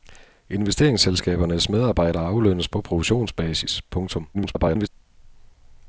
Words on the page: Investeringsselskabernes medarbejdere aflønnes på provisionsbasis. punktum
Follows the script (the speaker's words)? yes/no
no